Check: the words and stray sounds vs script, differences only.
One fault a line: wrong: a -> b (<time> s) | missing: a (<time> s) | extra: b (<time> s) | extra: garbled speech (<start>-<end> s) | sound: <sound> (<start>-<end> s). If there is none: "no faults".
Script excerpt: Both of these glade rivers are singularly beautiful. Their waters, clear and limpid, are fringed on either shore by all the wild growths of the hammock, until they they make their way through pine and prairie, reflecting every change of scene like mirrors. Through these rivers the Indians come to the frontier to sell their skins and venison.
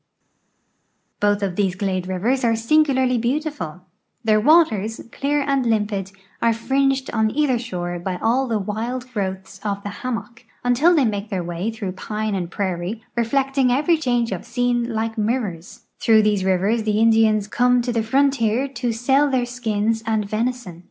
missing: they (11.1 s)